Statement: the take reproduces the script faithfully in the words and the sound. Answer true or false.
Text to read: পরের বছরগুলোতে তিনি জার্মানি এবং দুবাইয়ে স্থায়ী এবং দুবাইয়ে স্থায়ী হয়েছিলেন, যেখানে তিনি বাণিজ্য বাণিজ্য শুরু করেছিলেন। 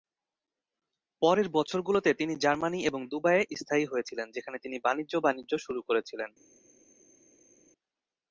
false